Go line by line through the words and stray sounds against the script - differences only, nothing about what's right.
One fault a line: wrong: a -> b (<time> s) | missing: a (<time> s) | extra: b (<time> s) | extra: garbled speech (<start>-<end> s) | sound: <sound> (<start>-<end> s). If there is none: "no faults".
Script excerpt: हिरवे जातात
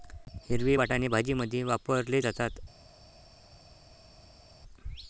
extra: वाटाणे भाजीमध्ये वापरले (0.7 s)